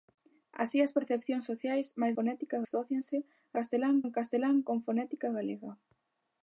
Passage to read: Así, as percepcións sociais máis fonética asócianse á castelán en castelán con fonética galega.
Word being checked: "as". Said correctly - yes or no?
yes